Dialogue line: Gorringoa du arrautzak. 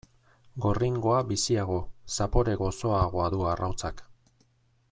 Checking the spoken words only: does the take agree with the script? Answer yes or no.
no